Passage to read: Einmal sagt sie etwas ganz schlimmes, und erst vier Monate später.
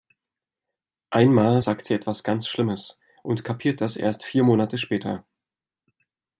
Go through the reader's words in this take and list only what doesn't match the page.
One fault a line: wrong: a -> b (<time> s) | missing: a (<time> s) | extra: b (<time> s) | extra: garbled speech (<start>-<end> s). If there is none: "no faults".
extra: kapiert das (3.5 s)